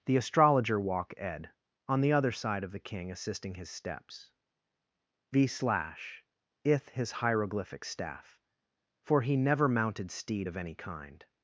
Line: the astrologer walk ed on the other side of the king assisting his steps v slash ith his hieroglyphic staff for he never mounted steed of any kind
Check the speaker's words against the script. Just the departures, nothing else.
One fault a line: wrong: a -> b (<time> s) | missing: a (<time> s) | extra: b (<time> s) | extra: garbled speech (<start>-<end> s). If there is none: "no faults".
no faults